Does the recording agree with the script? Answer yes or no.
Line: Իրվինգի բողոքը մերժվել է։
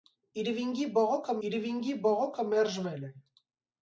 no